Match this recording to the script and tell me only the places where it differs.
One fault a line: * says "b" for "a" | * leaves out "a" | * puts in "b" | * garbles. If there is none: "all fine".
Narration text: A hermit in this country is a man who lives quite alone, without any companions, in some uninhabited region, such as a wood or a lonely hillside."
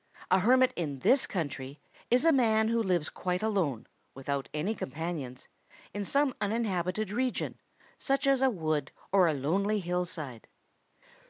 all fine